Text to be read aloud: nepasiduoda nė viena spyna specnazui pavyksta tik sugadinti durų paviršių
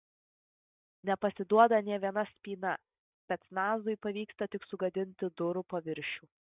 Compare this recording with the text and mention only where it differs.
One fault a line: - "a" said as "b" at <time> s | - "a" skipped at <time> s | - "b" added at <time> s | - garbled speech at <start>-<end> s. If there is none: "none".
none